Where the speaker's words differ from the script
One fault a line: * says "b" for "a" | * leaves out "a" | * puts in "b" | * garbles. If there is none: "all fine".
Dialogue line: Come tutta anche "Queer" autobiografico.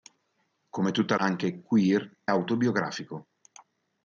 all fine